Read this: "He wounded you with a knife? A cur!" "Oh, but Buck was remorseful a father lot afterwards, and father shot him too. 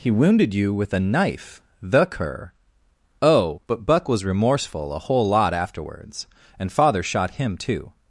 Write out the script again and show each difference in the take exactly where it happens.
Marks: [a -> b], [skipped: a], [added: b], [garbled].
"He wounded you with a knife? [A -> The] cur!" "Oh, but Buck was remorseful a [father -> whole] lot afterwards, and father shot him too.